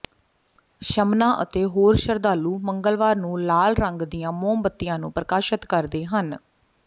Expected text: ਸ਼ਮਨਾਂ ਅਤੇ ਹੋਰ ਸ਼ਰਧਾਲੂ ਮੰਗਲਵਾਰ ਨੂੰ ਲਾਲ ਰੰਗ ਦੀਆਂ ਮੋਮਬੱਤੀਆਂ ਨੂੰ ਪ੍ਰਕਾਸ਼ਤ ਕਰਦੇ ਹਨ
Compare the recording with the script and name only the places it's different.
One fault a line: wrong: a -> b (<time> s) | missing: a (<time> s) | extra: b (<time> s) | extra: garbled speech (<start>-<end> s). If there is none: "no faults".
no faults